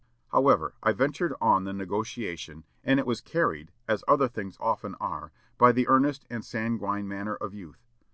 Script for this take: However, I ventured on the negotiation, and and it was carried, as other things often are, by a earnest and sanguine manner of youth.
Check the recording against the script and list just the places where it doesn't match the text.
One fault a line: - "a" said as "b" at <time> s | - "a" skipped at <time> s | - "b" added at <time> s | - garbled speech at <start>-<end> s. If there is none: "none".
- "and" skipped at 3.0 s
- "a" said as "the" at 5.7 s